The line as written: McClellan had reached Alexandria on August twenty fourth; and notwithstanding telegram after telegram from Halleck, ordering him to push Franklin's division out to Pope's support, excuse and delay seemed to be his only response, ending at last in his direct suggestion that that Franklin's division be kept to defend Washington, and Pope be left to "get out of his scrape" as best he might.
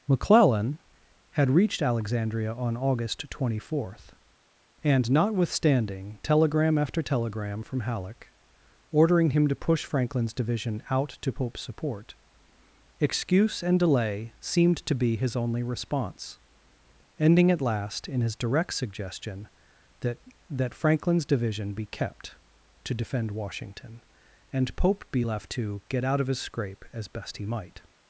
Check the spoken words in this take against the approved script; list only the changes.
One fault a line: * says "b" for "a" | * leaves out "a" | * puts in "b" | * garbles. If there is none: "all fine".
all fine